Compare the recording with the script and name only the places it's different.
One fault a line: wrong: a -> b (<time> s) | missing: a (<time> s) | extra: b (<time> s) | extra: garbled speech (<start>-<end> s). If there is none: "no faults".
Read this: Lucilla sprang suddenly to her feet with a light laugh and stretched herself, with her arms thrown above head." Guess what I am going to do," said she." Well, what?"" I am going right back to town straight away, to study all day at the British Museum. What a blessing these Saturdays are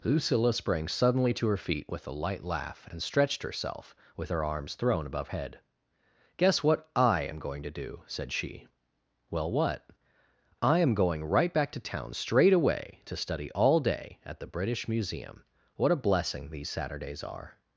no faults